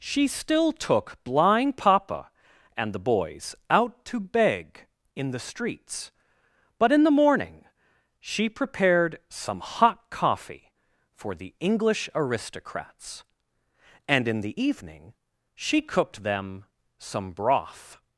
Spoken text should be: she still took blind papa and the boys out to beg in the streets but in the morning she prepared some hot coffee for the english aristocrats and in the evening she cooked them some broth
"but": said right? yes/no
yes